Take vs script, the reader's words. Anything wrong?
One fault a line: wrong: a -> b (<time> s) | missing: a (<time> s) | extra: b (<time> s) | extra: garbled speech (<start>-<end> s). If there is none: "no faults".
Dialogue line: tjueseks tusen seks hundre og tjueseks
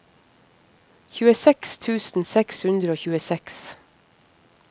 no faults